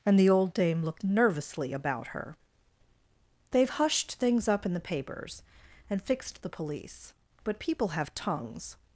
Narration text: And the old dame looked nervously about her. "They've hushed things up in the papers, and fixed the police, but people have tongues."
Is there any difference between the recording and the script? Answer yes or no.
no